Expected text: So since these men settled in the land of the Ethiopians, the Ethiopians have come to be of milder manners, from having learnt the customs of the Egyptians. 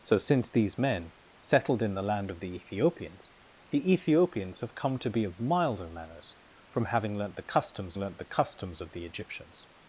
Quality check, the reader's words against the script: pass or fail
fail